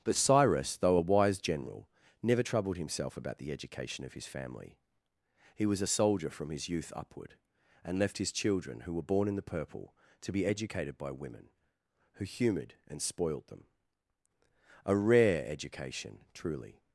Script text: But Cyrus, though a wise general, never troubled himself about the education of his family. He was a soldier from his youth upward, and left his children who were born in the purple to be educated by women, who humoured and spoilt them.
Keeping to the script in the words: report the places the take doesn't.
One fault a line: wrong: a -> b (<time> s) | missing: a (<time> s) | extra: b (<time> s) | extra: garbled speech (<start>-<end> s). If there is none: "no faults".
extra: A rare education truly (14.8 s)